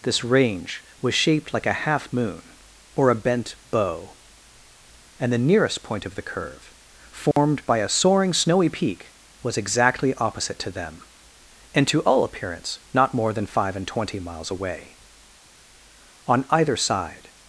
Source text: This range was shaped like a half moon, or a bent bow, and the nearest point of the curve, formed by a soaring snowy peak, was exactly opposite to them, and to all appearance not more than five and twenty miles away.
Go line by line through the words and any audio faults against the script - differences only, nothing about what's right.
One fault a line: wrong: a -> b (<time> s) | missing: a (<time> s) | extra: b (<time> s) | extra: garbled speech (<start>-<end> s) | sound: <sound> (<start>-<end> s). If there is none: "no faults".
sound: dropout (7.3-7.4 s)
extra: On either side (16.3 s)